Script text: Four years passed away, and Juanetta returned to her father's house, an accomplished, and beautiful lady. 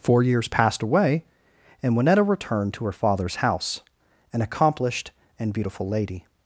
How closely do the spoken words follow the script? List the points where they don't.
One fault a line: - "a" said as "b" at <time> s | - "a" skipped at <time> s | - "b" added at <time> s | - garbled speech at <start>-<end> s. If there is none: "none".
none